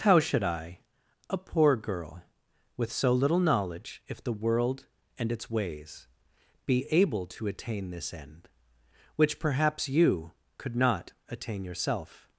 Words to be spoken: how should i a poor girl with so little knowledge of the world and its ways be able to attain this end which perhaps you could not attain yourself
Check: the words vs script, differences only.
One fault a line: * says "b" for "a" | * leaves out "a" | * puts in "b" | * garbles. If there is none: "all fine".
* says "if" for "of"